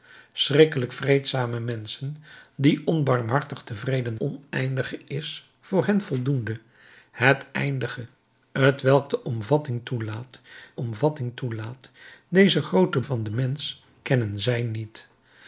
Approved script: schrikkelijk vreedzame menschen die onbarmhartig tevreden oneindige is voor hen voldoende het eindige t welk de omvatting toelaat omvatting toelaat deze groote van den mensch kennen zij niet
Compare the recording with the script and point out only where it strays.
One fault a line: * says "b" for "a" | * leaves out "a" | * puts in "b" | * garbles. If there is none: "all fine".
all fine